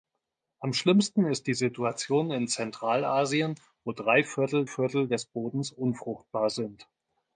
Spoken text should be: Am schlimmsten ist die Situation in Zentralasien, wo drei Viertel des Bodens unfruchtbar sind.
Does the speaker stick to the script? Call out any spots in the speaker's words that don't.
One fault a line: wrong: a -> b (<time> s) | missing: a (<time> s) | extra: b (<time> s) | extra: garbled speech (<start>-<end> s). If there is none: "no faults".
extra: Viertel (4.6 s)